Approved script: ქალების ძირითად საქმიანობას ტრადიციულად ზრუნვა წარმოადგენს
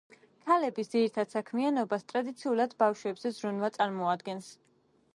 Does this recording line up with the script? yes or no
no